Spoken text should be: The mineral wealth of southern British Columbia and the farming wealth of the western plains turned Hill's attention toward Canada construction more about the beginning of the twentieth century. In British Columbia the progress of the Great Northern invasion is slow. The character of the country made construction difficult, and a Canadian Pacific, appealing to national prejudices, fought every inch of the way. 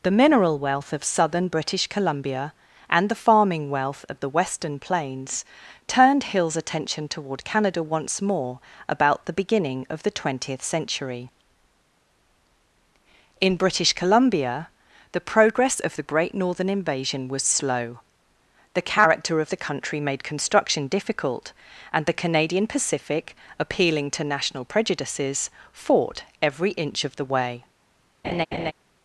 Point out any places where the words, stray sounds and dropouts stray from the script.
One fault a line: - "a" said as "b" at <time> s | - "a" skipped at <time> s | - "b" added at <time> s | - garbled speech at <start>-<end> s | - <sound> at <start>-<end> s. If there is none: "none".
- "construction" said as "once" at 7.8 s
- "is" said as "was" at 17.3 s
- "a" said as "the" at 22.1 s
- laugh at 28.2-28.7 s